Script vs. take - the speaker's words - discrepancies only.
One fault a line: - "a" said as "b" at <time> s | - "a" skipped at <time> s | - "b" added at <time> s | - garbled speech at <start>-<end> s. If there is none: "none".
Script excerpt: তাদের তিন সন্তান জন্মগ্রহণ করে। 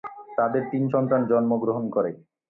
none